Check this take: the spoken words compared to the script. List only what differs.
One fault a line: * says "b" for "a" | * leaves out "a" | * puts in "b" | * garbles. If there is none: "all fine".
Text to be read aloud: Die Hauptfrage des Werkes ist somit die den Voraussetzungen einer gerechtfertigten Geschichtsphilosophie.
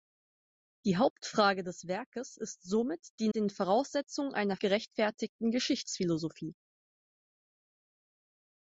all fine